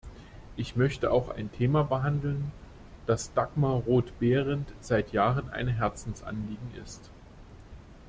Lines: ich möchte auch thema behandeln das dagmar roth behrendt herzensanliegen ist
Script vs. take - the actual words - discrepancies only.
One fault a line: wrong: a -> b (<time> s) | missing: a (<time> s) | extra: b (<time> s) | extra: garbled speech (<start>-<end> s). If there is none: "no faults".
extra: ein (1.3 s)
extra: seit jahren ein (4.8 s)